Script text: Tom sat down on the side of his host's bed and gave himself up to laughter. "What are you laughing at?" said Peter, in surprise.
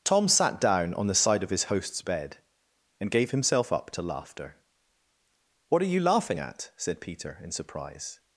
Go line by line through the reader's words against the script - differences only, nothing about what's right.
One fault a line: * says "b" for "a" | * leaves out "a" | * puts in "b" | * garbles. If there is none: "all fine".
all fine